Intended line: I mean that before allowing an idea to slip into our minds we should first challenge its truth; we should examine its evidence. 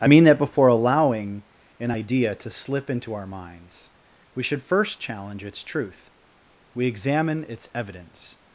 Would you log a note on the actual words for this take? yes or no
yes